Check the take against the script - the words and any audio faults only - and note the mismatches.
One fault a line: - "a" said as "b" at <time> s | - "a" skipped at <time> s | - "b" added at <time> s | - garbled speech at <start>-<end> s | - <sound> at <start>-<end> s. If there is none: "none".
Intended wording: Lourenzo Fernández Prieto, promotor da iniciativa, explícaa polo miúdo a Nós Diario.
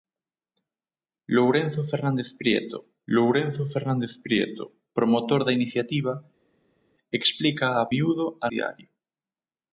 - "lourenzo Fernández Prieto" added at 3.1 s
- "polo" skipped at 7.9 s
- "Nós" skipped at 8.5 s